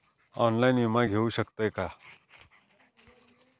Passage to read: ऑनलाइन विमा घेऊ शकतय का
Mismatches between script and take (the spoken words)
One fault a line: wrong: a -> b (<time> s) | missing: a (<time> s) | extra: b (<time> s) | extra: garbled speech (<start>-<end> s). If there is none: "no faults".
no faults